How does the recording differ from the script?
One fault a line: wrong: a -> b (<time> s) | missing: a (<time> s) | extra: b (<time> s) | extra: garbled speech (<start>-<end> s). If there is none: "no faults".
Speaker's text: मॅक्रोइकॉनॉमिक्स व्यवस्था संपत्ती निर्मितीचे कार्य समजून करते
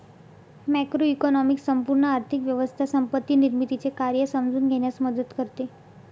extra: संपूर्ण आर्थिक (1.6 s)
extra: घेण्यास मदत (4.7 s)